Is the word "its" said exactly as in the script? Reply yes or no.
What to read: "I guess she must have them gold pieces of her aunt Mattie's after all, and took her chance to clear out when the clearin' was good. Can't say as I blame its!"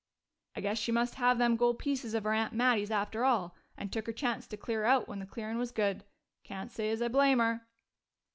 no